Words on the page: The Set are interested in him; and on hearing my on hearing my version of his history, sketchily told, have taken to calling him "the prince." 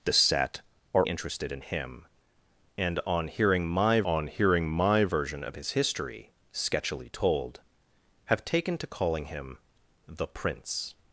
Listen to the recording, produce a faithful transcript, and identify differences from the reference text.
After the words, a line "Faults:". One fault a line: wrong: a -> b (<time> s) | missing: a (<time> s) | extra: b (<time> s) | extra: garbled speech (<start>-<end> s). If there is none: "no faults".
The Set are interested in him; and on hearing my on hearing my version of his history, sketchily told, have taken to calling him "the prince."
Faults:
no faults